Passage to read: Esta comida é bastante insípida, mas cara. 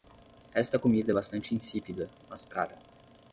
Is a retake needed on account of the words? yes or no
no